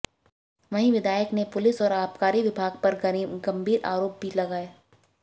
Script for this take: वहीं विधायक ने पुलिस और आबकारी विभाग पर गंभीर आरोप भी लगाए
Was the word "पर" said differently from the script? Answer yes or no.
no